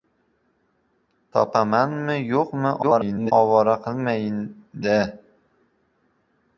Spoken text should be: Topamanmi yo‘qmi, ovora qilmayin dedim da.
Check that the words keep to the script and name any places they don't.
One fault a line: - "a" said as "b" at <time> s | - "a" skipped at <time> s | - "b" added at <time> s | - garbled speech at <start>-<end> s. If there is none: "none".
- garbled speech at 2.8-3.3 s
- "dedim" skipped at 4.4 s